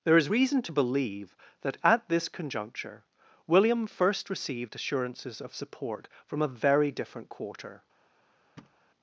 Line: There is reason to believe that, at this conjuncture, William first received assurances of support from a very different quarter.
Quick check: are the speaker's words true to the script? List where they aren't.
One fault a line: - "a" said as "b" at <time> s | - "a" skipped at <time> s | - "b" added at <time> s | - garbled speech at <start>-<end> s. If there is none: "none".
none